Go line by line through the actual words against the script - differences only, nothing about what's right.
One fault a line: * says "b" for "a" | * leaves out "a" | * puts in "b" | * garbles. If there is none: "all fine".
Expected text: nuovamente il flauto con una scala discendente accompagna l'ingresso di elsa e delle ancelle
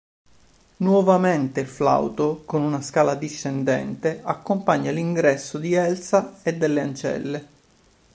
all fine